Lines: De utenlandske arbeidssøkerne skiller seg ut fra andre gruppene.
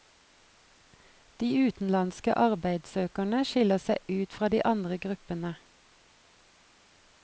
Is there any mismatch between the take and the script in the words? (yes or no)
yes